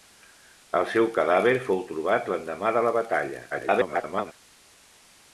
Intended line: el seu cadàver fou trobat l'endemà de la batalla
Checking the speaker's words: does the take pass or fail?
fail